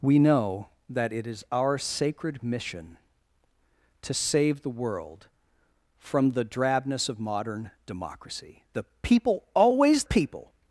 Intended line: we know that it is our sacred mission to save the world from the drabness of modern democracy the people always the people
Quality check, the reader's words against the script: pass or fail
fail